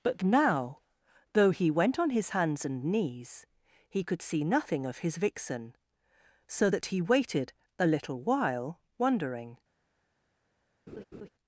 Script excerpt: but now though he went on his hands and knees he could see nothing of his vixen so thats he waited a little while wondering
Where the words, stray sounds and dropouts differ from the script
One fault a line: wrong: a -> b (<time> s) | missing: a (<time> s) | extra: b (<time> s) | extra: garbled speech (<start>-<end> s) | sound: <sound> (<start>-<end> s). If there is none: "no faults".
wrong: thats -> that (6.7 s)
sound: laugh (10.9-11.3 s)